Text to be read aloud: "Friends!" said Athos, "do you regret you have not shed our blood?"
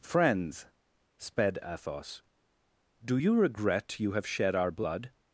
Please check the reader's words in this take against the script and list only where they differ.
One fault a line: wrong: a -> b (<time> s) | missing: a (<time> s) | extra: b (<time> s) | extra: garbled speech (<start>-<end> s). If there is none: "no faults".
wrong: said -> sped (1.2 s)
missing: not (4.3 s)